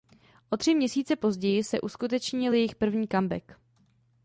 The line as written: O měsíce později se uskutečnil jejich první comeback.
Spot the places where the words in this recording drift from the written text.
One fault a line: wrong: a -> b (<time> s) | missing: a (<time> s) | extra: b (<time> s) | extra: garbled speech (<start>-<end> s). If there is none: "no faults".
extra: tři (0.5 s)